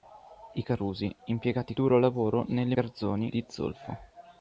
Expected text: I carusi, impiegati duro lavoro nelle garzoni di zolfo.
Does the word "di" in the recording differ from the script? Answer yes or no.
no